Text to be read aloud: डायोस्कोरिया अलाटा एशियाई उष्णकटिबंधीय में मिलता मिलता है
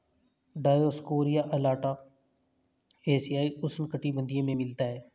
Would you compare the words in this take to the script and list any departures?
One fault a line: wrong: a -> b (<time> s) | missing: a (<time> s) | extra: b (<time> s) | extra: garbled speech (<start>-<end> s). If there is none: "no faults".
missing: मिलता (4.8 s)